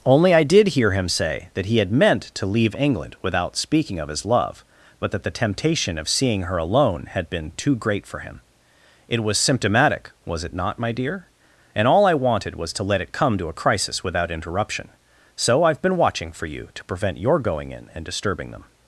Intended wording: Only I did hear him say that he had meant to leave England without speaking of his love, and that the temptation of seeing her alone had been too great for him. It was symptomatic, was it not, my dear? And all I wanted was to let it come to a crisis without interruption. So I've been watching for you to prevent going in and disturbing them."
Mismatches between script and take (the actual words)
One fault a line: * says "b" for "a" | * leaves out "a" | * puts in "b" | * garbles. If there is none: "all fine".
* says "but" for "and"
* puts in "your"